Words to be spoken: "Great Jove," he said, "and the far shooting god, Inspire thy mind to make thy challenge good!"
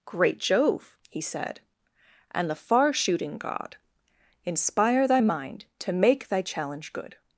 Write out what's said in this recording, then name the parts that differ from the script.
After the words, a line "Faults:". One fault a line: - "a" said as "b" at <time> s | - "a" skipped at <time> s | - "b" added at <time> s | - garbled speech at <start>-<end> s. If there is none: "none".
"Great Jove," he said, "and the far shooting god, Inspire thy mind to make thy challenge good!"
Faults:
none